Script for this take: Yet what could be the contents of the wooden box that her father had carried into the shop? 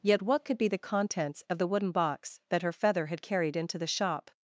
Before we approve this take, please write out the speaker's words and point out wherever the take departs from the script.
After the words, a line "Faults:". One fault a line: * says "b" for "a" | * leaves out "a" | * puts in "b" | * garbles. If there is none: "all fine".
Yet what could be the contents of the wooden box that her feather had carried into the shop?
Faults:
* says "feather" for "father"